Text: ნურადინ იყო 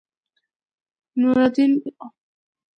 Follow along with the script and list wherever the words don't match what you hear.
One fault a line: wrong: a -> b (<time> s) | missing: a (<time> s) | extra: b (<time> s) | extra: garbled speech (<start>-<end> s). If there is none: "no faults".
no faults